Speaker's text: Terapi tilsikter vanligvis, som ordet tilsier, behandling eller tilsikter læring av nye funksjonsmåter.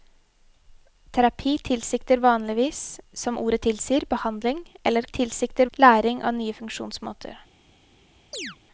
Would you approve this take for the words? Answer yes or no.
yes